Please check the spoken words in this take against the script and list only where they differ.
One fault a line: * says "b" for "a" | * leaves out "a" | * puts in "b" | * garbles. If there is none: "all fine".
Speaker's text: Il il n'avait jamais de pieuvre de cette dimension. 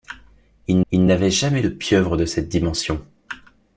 all fine